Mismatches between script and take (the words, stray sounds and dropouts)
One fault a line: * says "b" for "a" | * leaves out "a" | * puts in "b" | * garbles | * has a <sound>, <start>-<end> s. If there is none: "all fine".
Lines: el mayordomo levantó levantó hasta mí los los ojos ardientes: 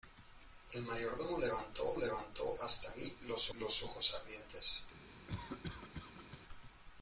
* has a cough, 5.3-6.4 s